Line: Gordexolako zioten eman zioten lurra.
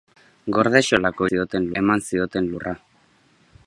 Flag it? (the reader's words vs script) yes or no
no